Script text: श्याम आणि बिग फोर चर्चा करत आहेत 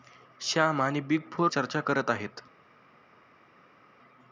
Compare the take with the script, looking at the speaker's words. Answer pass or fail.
pass